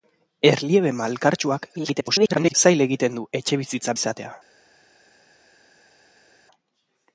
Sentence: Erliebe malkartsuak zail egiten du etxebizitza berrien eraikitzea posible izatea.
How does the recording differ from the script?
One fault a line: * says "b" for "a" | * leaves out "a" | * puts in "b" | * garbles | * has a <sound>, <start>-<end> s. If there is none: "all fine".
* garbles
* leaves out "berrien eraikitzea posible"